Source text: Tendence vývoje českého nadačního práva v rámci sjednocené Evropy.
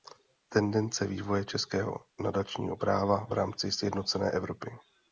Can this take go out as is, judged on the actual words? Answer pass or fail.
pass